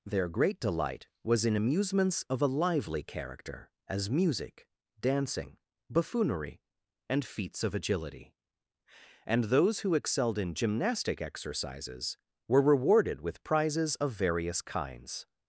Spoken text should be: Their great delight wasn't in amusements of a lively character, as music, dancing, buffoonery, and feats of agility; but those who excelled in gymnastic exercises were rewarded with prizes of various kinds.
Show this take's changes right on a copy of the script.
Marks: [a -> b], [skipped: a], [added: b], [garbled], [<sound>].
Their great delight [wasn't -> was] in amusements of a lively character, as music, dancing, buffoonery, and feats of agility; [but -> and] those who excelled in gymnastic exercises were rewarded with prizes of various kinds.